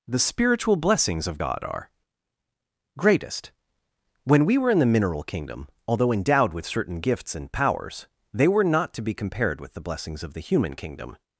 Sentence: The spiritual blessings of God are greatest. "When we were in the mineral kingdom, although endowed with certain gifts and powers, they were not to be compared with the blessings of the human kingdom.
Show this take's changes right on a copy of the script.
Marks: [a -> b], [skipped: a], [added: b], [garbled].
The spiritual blessings of God are greatest. "When we were in the mineral kingdom, although endowed with certain gifts and powers, they were not to be compared with the blessings of the human kingdom.